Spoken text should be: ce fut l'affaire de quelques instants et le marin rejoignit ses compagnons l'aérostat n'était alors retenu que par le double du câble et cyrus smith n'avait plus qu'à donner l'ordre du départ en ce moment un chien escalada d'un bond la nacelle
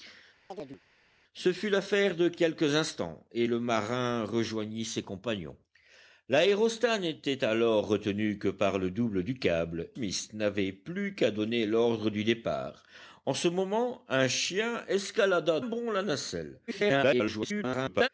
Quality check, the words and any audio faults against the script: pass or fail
fail